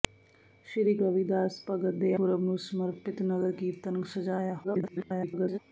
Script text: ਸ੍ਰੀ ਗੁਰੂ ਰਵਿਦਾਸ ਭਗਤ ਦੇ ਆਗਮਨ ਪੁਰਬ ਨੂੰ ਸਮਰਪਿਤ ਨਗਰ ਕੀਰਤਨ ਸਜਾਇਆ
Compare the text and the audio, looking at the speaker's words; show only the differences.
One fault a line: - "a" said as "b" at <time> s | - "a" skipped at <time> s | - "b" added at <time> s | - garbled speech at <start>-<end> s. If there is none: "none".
- "ਗੁਰੂ" skipped at 0.9 s
- "ਆਗਮਨ" skipped at 2.1 s
- garbled speech at 4.6-5.6 s